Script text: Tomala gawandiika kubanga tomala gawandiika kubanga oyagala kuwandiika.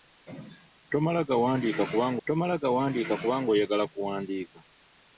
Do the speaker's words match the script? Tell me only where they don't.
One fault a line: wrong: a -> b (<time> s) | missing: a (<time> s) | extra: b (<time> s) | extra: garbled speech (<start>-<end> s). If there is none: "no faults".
no faults